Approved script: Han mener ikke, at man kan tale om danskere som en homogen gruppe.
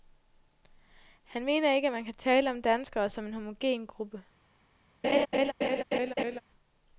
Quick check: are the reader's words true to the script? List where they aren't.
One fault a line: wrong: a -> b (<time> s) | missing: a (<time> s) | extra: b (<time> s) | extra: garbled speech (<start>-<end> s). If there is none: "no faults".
no faults